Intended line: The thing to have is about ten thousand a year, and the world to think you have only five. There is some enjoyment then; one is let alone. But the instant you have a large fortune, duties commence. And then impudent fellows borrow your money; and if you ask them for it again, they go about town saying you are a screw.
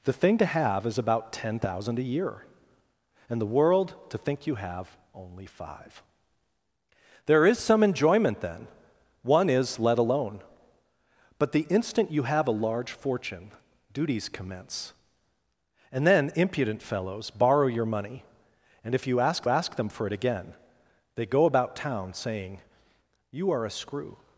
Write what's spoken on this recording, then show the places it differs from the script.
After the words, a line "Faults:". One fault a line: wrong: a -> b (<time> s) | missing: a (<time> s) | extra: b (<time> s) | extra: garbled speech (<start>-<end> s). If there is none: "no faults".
The thing to have is about ten thousand a year, and the world to think you have only five. There is some enjoyment then; one is let alone. But the instant you have a large fortune, duties commence. And then impudent fellows borrow your money; and if you ask ask them for it again, they go about town saying you are a screw.
Faults:
extra: ask (19.5 s)